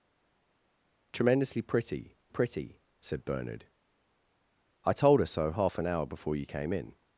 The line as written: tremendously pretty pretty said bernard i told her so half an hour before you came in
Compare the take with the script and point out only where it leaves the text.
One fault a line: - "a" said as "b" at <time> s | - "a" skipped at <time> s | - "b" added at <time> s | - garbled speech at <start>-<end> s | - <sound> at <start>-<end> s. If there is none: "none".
none